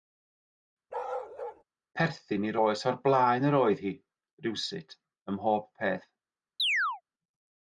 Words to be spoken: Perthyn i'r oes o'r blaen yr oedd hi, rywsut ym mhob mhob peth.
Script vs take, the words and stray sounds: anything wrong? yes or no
yes